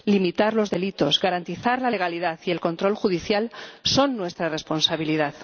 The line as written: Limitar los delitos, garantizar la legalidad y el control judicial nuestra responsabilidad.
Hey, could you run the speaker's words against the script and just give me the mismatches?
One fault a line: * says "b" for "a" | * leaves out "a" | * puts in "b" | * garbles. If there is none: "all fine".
* puts in "son"